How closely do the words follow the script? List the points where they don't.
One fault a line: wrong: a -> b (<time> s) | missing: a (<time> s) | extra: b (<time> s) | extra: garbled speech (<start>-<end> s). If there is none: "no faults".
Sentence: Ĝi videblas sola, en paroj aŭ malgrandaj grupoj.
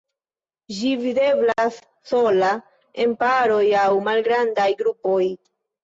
no faults